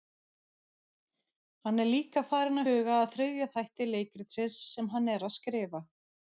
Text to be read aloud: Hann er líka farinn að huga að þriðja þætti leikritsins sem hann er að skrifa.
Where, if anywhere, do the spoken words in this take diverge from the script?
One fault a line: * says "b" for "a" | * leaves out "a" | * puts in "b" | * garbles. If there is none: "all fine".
* leaves out "að"